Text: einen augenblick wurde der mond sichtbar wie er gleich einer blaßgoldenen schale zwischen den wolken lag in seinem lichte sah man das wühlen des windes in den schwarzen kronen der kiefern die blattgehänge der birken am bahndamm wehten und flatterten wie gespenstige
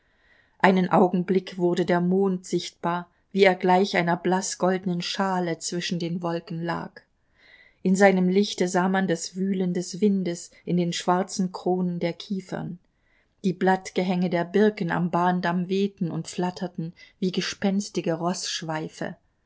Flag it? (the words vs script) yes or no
no